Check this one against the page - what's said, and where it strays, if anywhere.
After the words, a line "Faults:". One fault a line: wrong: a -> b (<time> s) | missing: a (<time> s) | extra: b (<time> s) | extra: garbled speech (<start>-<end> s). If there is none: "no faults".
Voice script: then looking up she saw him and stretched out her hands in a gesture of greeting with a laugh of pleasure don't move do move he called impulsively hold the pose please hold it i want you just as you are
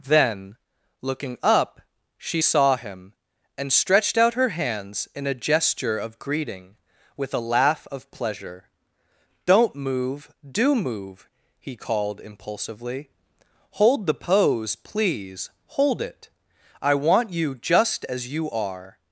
then looking up she saw him and stretched out her hands in a gesture of greeting with a laugh of pleasure don't move do move he called impulsively hold the pose please hold it i want you just as you are
Faults:
no faults